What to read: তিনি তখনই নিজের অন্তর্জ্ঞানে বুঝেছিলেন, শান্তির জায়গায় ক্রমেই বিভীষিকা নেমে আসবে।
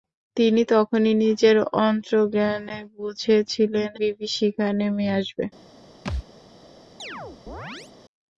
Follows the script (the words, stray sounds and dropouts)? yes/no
no